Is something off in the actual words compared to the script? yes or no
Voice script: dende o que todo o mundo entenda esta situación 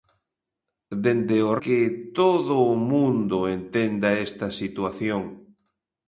no